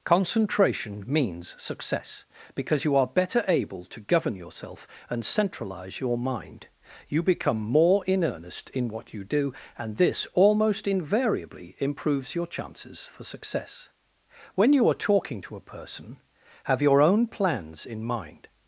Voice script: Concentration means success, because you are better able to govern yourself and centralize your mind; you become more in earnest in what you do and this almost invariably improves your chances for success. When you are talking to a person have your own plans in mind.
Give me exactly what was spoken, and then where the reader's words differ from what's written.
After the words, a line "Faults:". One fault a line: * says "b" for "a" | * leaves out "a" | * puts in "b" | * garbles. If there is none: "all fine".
Concentration means success, because you are better able to govern yourself and centralize your mind; you become more in earnest in what you do and this almost invariably improves your chances for success. When you are talking to a person have your own plans in mind.
Faults:
all fine